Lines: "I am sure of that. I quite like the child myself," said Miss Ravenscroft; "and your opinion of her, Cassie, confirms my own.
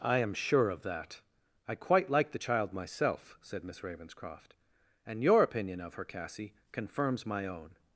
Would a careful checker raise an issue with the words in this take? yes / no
no